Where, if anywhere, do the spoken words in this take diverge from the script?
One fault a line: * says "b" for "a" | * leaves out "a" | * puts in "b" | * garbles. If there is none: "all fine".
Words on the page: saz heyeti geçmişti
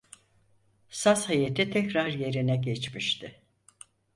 * puts in "tekrar yerine"